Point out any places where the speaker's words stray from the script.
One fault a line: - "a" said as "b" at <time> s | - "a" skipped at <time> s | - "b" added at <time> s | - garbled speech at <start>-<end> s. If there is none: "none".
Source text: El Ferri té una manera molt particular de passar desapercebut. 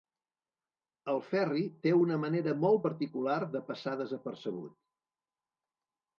none